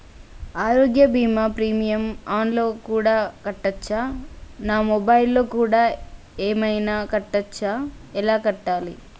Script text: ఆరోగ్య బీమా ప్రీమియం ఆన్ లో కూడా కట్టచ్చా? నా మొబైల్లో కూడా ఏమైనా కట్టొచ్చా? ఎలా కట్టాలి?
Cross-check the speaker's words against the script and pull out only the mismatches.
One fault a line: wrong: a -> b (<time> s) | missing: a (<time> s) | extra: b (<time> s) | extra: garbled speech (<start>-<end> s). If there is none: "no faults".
no faults